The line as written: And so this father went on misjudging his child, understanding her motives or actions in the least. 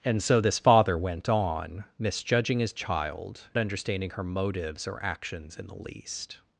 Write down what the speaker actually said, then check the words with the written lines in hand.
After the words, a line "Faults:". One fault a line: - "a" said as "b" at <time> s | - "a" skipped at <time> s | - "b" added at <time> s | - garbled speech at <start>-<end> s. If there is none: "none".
And so this father went on misjudging his child, understanding her motives or actions in the least.
Faults:
none